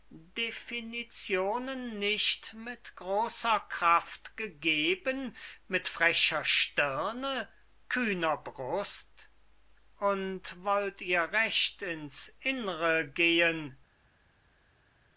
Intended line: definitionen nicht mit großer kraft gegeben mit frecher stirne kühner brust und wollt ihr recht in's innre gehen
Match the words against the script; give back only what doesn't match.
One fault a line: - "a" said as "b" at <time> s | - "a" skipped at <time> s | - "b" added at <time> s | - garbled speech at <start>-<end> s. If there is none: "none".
none